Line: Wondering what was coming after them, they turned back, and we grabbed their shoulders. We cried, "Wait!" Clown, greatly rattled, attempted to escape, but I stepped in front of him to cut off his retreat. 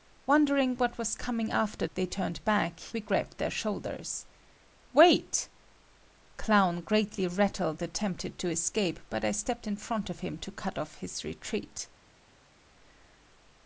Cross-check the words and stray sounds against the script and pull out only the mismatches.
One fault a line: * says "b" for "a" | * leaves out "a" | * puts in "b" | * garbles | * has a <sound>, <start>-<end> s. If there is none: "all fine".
* leaves out "them"
* leaves out "and"
* leaves out "We cried"